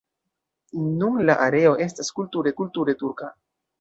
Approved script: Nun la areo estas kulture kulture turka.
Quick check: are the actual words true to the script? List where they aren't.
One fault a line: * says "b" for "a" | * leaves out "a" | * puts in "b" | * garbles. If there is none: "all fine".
all fine